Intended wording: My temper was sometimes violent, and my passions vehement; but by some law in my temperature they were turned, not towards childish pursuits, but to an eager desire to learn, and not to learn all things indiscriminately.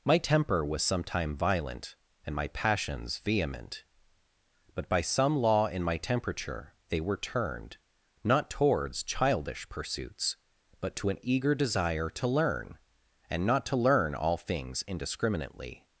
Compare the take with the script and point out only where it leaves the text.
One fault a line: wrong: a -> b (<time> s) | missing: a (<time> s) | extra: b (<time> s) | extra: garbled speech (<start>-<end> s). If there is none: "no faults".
wrong: sometimes -> sometime (0.8 s)